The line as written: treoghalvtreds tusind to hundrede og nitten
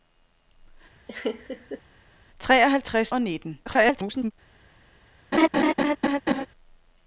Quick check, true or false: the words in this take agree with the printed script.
false